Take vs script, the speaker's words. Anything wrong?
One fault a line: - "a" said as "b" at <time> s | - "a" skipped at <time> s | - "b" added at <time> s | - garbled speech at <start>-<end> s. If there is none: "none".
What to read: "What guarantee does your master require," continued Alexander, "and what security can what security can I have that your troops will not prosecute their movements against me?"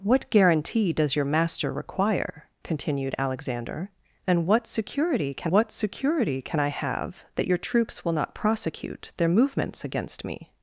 none